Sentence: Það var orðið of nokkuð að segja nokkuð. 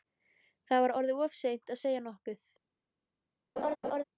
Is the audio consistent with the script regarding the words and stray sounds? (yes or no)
no